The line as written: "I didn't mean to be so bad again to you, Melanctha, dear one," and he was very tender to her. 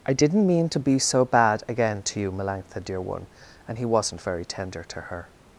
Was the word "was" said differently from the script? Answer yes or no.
yes